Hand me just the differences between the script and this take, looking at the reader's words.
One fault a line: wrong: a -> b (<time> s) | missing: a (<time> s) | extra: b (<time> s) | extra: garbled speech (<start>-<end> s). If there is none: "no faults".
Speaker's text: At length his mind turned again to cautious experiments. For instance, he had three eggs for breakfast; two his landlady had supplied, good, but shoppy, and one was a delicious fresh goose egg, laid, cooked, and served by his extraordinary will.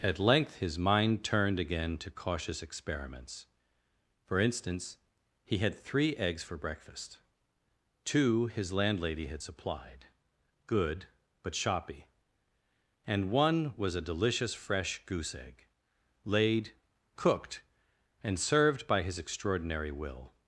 no faults